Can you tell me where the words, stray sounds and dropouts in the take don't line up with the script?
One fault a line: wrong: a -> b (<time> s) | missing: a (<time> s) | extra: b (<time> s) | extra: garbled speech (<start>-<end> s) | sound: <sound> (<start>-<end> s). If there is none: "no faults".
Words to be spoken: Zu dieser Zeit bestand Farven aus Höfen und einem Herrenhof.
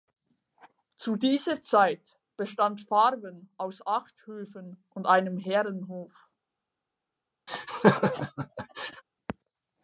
extra: acht (3.9 s)
sound: laugh (7.5-9.0 s)